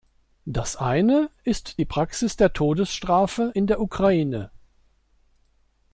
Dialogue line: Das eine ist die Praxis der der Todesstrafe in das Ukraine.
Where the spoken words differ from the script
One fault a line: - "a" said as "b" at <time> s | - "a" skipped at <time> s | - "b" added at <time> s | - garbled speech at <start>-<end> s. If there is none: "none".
- "der" skipped at 2.5 s
- "das" said as "der" at 3.7 s